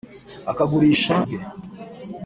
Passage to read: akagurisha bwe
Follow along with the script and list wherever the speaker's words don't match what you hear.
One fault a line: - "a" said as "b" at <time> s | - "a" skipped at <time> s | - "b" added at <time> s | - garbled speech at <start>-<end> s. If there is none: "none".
none